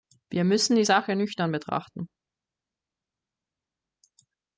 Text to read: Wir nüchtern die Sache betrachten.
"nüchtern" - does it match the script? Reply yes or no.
no